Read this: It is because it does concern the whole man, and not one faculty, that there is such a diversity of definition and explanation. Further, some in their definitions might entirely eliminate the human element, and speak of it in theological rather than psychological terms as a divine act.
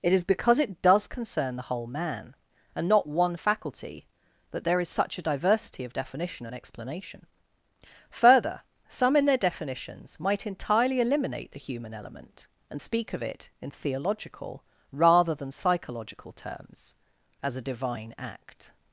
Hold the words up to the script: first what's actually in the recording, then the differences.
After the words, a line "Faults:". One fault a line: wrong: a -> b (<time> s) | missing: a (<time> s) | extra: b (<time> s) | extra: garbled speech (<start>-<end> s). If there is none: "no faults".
It is because it does concern the whole man, and not one faculty, that there is such a diversity of definition and explanation. Further, some in their definitions might entirely eliminate the human element, and speak of it in theological rather than psychological terms as a divine act.
Faults:
no faults